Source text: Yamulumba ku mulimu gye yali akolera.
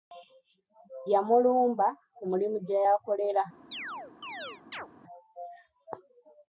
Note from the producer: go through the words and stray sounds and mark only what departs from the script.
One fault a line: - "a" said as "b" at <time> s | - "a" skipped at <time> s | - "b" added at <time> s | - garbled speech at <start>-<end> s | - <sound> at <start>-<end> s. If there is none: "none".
- "yali" skipped at 2.8 s
- chirp at 3.7-4.9 s